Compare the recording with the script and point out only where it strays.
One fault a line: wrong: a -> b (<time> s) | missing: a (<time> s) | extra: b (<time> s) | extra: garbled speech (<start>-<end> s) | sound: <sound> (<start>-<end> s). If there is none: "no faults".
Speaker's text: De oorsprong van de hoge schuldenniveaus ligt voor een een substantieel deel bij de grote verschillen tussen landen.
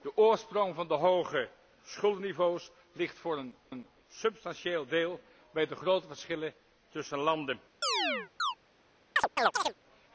sound: chirp (7.8-8.5 s)
sound: chirp (9.2-9.7 s)